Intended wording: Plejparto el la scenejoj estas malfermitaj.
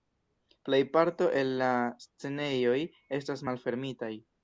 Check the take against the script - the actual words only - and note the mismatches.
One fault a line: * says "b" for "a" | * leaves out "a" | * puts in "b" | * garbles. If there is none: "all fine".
all fine